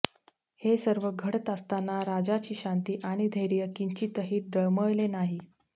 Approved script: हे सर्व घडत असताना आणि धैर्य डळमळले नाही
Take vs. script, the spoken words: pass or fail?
fail